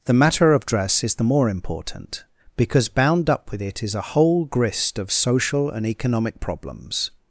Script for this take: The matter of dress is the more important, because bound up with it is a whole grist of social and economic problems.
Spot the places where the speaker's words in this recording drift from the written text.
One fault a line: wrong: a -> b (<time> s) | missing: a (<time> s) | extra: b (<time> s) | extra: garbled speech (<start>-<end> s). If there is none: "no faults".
no faults